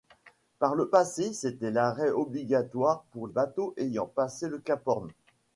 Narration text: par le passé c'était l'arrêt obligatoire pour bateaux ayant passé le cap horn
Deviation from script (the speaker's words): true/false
false